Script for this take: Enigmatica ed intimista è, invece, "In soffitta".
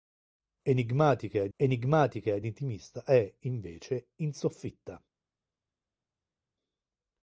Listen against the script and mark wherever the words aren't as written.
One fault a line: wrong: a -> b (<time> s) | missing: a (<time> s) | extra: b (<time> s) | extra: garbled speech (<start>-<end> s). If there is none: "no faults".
extra: enigmatica ed (1.6 s)